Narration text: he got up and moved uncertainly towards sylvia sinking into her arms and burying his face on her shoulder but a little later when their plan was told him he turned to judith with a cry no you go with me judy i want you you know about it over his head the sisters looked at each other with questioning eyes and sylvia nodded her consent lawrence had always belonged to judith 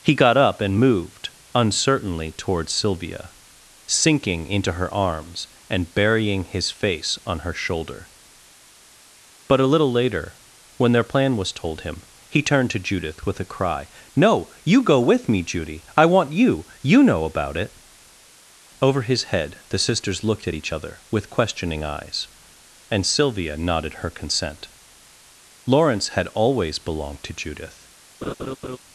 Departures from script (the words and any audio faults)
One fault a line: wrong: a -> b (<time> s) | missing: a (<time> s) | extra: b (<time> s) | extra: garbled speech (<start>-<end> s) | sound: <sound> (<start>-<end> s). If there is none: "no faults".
sound: laugh (28.2-28.8 s)